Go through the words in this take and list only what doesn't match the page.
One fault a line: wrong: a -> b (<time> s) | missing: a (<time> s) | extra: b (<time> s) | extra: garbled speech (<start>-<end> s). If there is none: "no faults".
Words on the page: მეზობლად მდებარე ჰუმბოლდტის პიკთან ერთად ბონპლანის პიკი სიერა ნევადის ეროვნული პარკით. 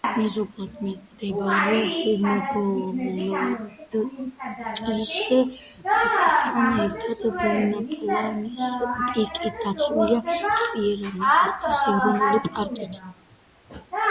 extra: დაცულია (9.6 s)